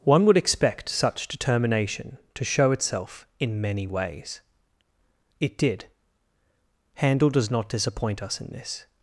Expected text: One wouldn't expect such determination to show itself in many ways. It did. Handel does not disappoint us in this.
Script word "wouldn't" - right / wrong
wrong